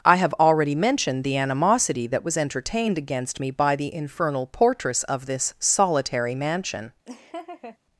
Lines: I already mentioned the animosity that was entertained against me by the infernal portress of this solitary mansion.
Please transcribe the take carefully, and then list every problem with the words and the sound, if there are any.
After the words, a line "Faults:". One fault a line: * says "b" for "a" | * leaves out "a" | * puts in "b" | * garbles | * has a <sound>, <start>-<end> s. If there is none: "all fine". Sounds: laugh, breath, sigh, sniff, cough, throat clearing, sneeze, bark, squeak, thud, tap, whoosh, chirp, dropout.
I have already mentioned the animosity that was entertained against me by the infernal portress of this solitary mansion.
Faults:
* puts in "have"
* has a laugh, 7.0-7.8 s